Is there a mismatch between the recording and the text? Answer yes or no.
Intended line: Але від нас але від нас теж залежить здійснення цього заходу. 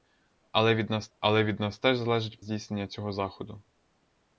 no